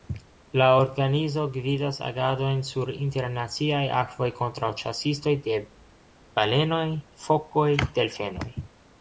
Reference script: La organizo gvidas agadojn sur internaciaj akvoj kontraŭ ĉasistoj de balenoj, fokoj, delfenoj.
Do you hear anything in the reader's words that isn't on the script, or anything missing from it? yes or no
no